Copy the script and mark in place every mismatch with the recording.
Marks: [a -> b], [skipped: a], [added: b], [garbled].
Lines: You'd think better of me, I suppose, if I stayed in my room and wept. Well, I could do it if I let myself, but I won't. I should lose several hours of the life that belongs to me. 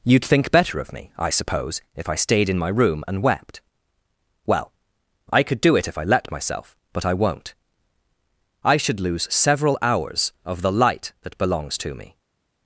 You'd think better of me, I suppose, if I stayed in my room and wept. Well, I could do it if I let myself, but I won't. I should lose several hours of the [life -> light] that belongs to me.